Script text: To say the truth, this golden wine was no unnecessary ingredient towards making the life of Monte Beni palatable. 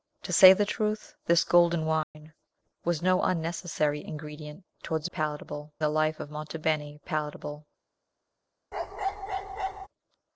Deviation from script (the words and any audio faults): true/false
true